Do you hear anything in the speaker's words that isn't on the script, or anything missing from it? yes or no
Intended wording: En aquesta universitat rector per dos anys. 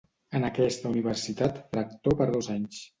no